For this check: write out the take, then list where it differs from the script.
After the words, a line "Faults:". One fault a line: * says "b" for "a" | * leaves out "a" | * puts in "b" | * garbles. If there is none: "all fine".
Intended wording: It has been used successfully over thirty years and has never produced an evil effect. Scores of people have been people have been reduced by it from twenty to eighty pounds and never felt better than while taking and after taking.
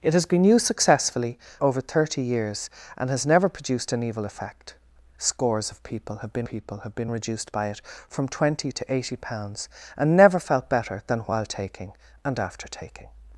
It has been used successfully over thirty years and has never produced an evil effect. Scores of people have been people have been reduced by it from twenty to eighty pounds and never felt better than while taking and after taking.
Faults:
all fine